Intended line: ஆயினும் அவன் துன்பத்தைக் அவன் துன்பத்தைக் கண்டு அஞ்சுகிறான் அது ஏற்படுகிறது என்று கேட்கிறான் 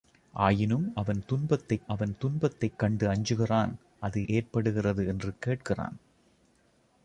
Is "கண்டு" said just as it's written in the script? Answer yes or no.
yes